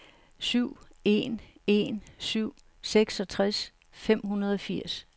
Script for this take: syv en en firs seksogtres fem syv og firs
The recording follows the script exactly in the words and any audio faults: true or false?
false